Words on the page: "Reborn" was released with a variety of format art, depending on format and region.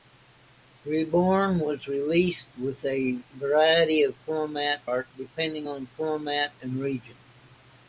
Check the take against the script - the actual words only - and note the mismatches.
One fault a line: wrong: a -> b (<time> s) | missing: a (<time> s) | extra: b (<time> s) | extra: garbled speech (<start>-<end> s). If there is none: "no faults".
no faults